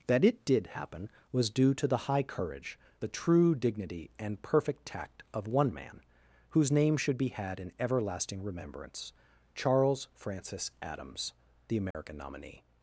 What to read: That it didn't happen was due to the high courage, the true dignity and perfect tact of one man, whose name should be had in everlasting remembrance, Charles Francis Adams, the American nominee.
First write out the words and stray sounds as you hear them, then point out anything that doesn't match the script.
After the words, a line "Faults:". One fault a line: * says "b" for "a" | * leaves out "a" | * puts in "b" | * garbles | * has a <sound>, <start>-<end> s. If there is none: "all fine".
That it did happen was due to the high courage, the true dignity and perfect tact of one man, whose name should be had in everlasting remembrance, Charles Francis Adams, the American nominee.
Faults:
* says "did" for "didn't"
* has a dropout, 11.9-11.9 s